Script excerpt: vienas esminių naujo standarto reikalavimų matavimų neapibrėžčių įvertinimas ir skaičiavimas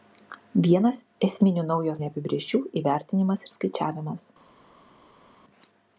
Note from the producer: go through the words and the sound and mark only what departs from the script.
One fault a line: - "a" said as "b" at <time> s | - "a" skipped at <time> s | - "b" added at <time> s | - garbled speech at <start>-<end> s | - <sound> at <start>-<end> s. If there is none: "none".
- "standarto reikalavimų matavimų" skipped at 2.0 s